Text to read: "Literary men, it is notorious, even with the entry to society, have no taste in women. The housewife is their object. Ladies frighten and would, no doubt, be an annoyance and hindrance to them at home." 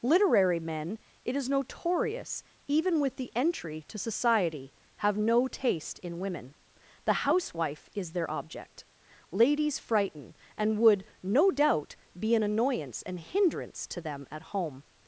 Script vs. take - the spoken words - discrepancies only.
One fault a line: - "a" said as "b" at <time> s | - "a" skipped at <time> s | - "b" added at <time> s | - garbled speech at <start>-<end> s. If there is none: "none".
none